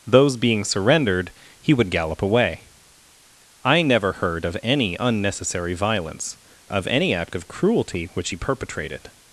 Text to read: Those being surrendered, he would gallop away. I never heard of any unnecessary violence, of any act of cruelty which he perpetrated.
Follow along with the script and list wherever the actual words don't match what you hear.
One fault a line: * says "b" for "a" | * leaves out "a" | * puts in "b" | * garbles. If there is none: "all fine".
all fine